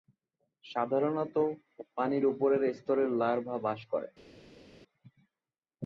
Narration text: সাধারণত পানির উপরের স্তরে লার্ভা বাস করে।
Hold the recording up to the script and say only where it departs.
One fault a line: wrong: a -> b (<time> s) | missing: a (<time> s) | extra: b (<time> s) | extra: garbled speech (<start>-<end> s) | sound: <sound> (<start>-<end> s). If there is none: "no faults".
no faults